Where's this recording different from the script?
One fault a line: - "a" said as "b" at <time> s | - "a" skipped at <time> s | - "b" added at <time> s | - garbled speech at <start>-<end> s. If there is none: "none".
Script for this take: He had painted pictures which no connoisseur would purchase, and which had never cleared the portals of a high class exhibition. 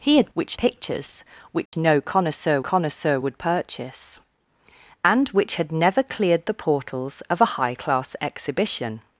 - "painted" said as "which" at 0.3 s
- "connoisseur" added at 2.6 s